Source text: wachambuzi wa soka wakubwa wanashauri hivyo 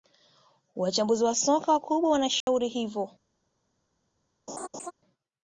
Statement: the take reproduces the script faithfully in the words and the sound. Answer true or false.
false